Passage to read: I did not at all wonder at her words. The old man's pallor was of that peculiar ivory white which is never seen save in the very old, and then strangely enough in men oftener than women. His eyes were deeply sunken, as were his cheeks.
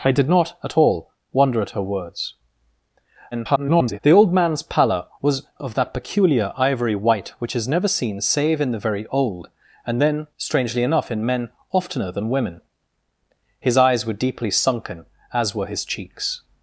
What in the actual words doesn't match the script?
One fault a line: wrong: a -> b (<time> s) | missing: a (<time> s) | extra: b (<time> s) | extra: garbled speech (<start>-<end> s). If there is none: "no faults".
extra: garbled speech (3.3-4.0 s)